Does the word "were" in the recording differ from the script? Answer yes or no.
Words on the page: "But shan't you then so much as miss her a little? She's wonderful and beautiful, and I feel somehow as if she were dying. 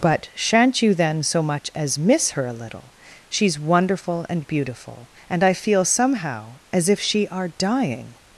yes